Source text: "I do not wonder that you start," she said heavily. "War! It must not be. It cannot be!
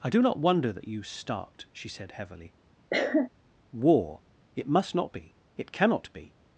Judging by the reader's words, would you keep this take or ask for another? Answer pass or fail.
pass